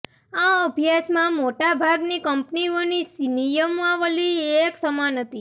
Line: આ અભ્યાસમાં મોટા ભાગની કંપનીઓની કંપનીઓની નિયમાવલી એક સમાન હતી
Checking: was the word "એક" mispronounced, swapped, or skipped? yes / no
no